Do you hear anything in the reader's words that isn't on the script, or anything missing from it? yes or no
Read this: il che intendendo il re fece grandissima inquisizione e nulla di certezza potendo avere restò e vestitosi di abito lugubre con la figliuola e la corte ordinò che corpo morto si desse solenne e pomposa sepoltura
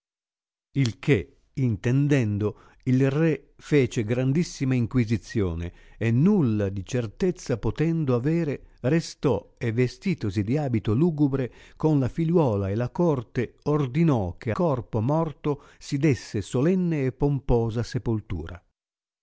no